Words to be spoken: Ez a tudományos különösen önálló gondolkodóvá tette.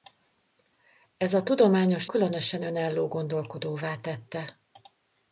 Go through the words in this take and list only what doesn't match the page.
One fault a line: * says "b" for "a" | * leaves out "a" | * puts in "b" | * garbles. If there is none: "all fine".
all fine